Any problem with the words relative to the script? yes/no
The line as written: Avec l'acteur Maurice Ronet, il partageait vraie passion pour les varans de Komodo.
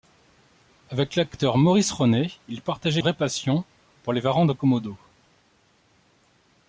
no